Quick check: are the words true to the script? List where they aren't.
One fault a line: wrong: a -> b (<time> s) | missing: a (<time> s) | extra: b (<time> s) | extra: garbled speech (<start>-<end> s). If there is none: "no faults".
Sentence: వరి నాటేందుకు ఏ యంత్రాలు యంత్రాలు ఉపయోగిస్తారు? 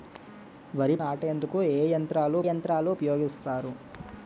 no faults